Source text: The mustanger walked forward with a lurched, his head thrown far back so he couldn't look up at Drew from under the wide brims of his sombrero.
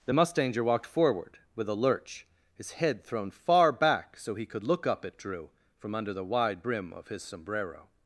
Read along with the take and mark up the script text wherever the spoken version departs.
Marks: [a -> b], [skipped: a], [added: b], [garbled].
The mustanger walked forward with a [lurched, -> lurch] his head thrown far back so he [couldn't -> could] look up at Drew from under the wide [brims -> brim] of his sombrero.